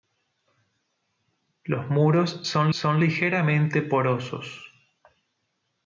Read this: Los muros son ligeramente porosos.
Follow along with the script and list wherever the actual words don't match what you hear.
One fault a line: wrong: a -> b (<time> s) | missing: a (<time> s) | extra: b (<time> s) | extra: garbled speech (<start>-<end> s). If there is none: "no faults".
extra: son (2.7 s)